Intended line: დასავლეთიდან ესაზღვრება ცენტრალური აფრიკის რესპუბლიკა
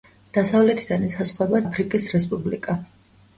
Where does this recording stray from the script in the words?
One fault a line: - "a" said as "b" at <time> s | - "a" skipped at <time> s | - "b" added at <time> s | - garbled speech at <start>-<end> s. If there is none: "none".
- "ცენტრალური" skipped at 1.6 s